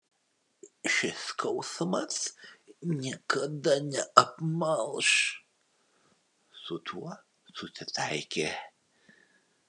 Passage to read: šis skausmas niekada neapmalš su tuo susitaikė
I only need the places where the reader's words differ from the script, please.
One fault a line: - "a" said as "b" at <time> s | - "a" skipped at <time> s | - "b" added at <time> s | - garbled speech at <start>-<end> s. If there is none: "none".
none